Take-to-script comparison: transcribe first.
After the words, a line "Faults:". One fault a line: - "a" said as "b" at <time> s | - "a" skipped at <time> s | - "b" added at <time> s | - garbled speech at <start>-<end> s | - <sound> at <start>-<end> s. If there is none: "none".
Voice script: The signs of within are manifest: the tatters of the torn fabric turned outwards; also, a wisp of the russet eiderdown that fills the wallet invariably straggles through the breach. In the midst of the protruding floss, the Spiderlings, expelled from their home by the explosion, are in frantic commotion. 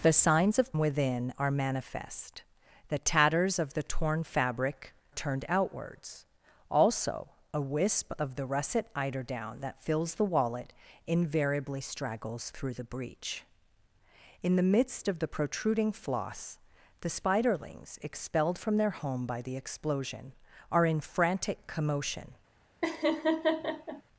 The signs of within are manifest: the tatters of the torn fabric turned outwards; also, a wisp of the russet eiderdown that fills the wallet invariably straggles through the breach. In the midst of the protruding floss, the Spiderlings, expelled from their home by the explosion, are in frantic commotion.
Faults:
- laugh at 22.8-24.0 s